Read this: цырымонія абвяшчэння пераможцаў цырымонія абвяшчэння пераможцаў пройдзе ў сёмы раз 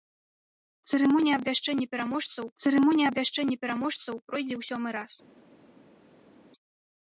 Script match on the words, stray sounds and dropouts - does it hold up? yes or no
yes